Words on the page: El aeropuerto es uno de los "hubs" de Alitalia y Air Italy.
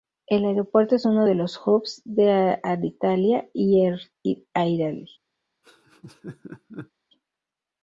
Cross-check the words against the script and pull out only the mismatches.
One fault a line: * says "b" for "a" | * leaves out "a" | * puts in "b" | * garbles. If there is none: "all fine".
all fine